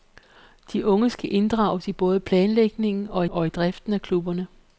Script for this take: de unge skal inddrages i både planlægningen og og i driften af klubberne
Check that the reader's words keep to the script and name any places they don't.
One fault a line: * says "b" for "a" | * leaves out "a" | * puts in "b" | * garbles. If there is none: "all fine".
all fine